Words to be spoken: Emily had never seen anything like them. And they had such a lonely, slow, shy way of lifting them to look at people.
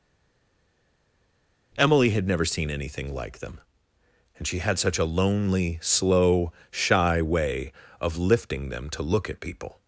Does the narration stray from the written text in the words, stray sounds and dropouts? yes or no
yes